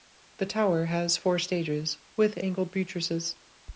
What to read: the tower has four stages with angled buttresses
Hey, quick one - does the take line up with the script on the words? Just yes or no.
yes